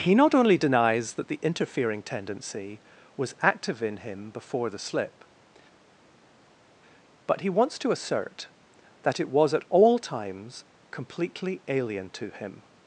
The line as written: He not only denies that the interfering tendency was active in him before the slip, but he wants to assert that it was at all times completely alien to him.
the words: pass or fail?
pass